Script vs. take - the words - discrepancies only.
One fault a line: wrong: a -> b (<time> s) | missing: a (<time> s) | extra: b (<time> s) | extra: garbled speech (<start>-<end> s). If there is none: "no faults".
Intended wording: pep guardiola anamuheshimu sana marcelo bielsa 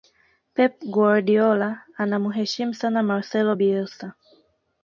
no faults